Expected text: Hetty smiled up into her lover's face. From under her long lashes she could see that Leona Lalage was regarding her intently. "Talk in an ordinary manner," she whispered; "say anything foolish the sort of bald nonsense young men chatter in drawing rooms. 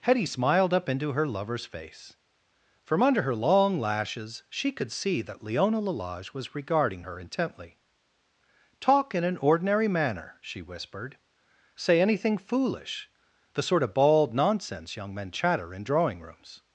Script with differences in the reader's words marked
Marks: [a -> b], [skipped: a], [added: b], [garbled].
Hetty smiled up into her lover's face. From under her long lashes she could see that Leona Lalage was regarding her intently. "Talk in an ordinary manner," she whispered; "say anything foolish the sort of bald nonsense young men chatter in drawing rooms.